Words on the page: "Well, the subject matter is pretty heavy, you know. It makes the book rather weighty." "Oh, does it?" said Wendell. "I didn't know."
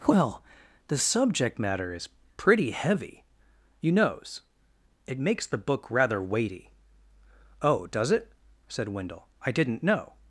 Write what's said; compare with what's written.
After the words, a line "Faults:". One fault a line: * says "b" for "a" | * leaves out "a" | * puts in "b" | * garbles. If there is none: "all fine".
"Well, the subject matter is pretty heavy, you knows. It makes the book rather weighty." "Oh, does it?" said Wendell. "I didn't know."
Faults:
* says "knows" for "know"